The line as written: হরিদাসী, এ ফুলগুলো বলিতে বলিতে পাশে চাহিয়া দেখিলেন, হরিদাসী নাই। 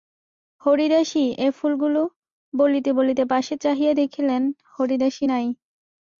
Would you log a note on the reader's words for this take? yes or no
no